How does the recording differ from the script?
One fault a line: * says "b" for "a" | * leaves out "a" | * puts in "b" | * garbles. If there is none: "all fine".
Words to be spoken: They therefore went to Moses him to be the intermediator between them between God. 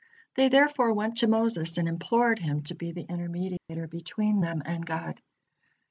* puts in "and implored"
* says "and" for "between"